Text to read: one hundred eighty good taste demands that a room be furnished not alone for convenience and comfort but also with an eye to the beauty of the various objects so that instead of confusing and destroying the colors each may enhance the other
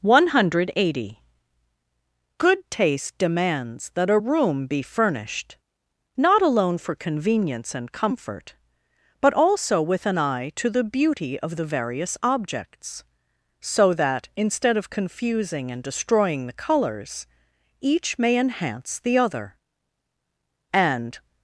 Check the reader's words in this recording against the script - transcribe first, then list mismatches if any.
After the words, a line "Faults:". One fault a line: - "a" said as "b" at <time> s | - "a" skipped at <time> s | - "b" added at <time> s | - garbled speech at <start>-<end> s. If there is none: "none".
one hundred eighty good taste demands that a room be furnished not alone for convenience and comfort but also with an eye to the beauty of the various objects so that instead of confusing and destroying the colors each may enhance the other and
Faults:
- "and" added at 20.7 s